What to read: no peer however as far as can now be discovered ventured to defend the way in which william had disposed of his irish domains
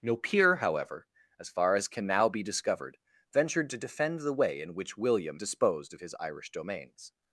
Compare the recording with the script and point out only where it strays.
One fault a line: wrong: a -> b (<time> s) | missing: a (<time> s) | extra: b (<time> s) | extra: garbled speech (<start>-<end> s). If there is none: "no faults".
missing: had (5.4 s)